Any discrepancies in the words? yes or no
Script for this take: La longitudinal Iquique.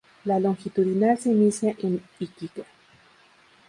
yes